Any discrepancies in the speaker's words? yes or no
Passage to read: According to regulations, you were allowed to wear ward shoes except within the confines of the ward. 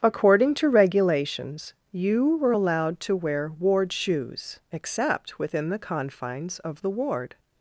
no